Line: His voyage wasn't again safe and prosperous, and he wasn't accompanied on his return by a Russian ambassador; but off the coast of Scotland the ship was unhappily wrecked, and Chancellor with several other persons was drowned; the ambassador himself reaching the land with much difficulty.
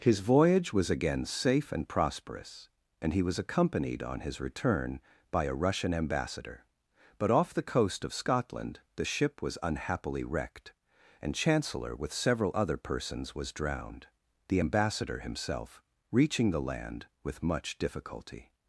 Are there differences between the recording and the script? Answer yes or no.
yes